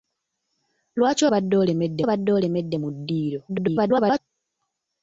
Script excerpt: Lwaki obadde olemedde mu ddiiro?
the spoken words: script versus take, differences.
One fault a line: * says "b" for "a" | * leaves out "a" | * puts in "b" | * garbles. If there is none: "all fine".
* puts in "obadde olemedde"
* garbles